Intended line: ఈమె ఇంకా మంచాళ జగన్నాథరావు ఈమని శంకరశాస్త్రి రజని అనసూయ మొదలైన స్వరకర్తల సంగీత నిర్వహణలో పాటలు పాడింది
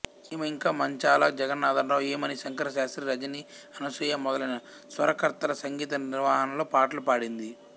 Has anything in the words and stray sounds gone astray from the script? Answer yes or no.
no